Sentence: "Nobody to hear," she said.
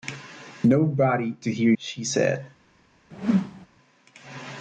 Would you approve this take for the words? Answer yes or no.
yes